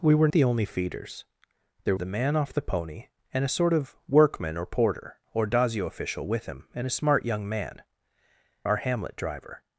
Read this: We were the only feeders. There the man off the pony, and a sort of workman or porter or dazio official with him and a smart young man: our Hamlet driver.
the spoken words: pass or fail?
pass